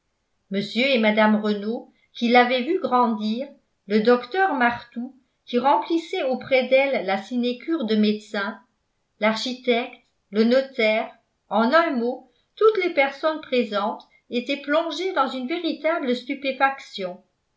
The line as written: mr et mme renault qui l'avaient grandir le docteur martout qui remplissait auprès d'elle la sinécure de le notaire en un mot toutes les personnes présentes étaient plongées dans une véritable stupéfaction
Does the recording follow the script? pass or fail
fail